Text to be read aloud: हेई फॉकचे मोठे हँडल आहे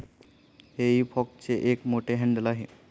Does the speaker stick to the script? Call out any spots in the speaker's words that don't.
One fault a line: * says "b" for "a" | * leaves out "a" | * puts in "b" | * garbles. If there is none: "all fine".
* puts in "एक"